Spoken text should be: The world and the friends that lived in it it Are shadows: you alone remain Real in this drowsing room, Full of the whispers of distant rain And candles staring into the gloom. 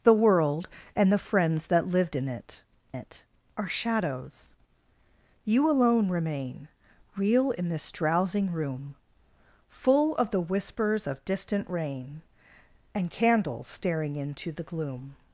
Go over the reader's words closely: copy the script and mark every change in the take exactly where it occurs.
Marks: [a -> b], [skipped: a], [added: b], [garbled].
The world and the friends that lived in it it Are shadows: you alone remain Real in this drowsing room, Full of the whispers of distant rain And candles staring into the gloom.